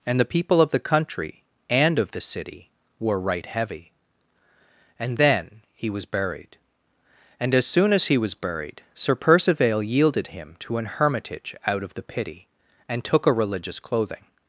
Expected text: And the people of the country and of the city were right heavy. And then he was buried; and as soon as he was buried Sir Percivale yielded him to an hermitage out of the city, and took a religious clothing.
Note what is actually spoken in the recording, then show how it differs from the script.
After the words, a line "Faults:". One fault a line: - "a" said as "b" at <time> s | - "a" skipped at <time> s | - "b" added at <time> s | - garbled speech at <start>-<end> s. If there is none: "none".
And the people of the country and of the city were right heavy. And then he was buried; and as soon as he was buried Sir Percivale yielded him to an hermitage out of the pity, and took a religious clothing.
Faults:
- "city" said as "pity" at 12.0 s